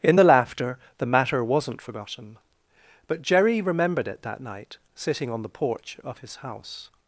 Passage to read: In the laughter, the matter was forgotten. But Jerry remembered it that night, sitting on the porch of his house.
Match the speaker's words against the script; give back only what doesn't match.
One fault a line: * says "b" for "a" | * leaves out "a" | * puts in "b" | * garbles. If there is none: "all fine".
* says "wasn't" for "was"